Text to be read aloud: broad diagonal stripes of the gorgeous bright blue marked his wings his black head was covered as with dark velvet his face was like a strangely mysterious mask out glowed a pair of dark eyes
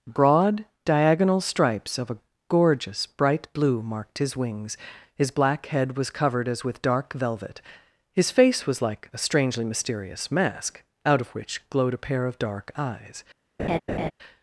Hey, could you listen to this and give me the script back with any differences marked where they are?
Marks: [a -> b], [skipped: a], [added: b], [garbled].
broad diagonal stripes of [the -> a] gorgeous bright blue marked his wings his black head was covered as with dark velvet his face was like a strangely mysterious mask out [added: of which] glowed a pair of dark eyes